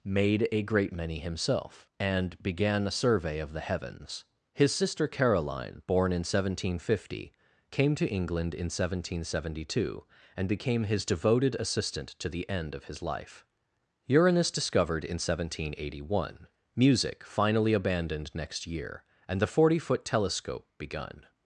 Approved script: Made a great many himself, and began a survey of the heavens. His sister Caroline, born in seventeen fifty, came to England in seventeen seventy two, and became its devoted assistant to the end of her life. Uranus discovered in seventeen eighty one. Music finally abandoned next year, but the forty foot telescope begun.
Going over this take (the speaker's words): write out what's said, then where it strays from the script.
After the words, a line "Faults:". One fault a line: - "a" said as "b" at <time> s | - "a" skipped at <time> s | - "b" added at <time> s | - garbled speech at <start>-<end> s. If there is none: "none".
Made a great many himself, and began a survey of the heavens. His sister Caroline, born in seventeen fifty, came to England in seventeen seventy two, and became his devoted assistant to the end of his life. Uranus discovered in seventeen eighty one. Music finally abandoned next year, and the forty foot telescope begun.
Faults:
- "its" said as "his" at 10.8 s
- "her" said as "his" at 12.8 s
- "but" said as "and" at 19.3 s